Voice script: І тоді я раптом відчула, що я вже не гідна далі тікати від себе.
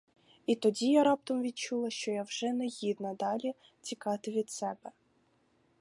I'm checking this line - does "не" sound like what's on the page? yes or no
yes